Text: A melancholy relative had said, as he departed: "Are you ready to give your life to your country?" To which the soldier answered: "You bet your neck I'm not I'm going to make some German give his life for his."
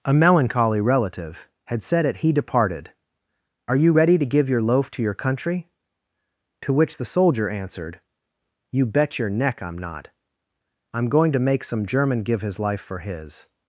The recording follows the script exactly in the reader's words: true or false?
false